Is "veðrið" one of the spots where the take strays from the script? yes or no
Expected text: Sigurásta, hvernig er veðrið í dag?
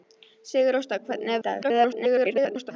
yes